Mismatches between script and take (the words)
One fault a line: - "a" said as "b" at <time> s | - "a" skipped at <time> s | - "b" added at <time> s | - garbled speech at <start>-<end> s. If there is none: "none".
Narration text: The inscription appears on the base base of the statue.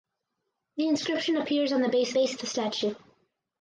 none